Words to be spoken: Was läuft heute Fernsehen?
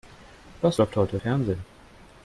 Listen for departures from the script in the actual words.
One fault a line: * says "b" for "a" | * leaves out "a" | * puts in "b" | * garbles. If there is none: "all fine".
all fine